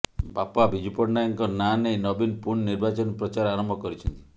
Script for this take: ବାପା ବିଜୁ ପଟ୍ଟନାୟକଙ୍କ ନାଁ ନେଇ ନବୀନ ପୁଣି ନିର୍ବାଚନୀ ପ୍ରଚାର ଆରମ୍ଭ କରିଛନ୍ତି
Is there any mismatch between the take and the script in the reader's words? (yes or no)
no